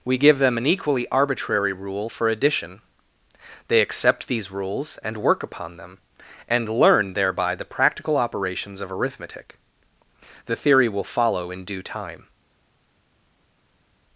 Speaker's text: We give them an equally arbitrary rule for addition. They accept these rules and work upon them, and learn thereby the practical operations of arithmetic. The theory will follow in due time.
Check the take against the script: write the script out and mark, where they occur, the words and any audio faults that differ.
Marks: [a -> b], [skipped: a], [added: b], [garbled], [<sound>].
We give them an equally arbitrary rule for addition. They accept these rules and work upon them, and learn thereby the practical operations of arithmetic. The theory will follow in due time.